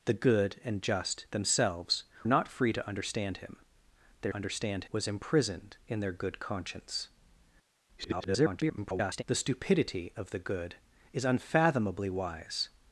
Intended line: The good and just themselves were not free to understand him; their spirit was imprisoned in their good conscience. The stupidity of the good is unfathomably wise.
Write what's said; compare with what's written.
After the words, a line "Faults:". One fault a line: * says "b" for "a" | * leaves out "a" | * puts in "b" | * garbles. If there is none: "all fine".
The good and just themselves not free to understand him; their understand was imprisoned in their good conscience. [garbled] The stupidity of the good is unfathomably wise.
Faults:
* leaves out "were"
* says "understand" for "spirit"
* garbles